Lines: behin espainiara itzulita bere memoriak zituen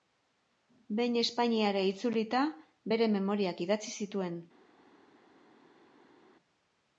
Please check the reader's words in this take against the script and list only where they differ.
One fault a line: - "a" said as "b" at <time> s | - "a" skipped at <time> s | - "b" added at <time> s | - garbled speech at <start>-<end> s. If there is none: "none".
- "idatzi" added at 3.7 s